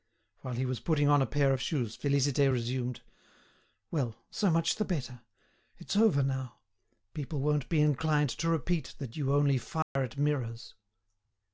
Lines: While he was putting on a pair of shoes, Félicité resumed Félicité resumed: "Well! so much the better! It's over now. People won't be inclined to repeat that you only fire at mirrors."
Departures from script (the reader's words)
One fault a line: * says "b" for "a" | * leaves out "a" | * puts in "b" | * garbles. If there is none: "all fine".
* leaves out "Félicité resumed"